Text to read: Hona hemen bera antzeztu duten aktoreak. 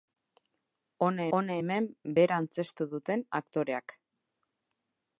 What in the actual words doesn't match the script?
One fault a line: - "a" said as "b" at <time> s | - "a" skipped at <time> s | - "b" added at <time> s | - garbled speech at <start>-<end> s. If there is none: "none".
- "hona" added at 1.4 s